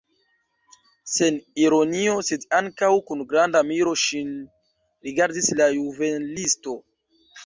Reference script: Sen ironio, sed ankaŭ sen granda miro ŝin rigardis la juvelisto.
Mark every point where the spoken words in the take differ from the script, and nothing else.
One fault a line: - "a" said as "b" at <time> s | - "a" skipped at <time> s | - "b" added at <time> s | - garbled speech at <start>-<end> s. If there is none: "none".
- "sen" said as "kun" at 3.1 s